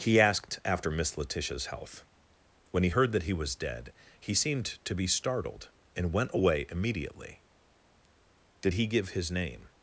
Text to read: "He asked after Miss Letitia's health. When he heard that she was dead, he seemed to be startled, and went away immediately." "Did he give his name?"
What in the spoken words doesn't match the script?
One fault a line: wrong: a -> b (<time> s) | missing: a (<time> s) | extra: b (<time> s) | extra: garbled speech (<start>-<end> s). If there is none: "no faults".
wrong: she -> he (3.2 s)